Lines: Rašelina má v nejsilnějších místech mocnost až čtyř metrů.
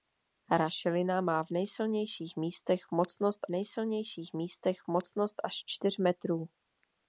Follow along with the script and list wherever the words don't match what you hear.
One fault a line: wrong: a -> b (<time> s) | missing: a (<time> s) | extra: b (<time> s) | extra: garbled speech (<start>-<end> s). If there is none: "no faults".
extra: nejsilnějších místech mocnost (3.5 s)